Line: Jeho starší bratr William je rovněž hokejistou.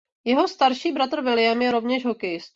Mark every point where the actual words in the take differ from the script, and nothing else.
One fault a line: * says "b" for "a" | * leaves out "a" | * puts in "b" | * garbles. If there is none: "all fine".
all fine